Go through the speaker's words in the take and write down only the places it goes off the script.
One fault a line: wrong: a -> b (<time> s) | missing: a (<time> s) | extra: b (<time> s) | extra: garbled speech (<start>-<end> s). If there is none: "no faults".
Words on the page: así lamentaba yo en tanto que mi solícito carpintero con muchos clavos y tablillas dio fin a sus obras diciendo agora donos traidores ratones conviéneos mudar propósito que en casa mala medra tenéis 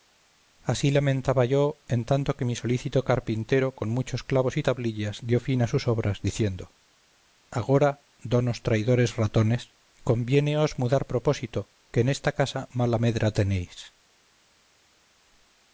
extra: esta (12.1 s)